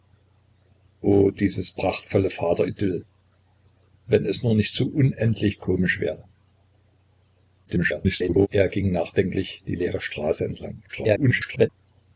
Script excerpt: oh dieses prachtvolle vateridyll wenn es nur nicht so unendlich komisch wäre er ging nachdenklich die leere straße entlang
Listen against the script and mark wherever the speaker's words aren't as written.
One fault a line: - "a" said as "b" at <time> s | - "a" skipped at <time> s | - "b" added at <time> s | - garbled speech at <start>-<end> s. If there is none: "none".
- garbled speech at 7.7-8.5 s
- garbled speech at 10.9-11.7 s